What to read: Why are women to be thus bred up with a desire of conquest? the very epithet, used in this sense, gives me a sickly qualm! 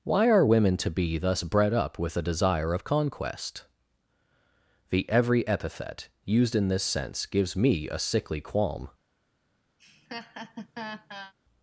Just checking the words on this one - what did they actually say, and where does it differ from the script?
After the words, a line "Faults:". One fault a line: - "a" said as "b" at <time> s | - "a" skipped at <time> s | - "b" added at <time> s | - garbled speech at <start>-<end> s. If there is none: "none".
Why are women to be thus bred up with a desire of conquest? the every epithet, used in this sense, gives me a sickly qualm!
Faults:
- "very" said as "every" at 5.1 s